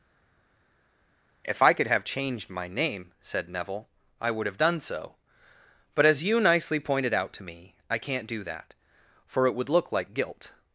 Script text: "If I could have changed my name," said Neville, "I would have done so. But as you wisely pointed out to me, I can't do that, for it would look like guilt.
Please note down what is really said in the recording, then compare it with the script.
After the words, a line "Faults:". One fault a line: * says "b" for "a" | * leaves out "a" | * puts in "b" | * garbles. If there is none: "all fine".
"If I could have changed my name," said Neville, "I would have done so. But as you nicely pointed out to me, I can't do that, for it would look like guilt.
Faults:
* says "nicely" for "wisely"